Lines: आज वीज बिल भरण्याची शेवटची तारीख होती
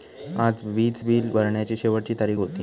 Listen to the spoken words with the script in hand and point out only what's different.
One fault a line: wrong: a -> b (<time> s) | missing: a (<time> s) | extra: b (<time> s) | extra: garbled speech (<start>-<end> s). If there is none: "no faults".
no faults